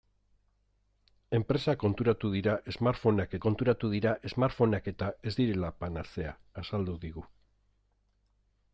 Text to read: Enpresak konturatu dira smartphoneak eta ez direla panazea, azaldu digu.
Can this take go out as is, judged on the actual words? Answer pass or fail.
fail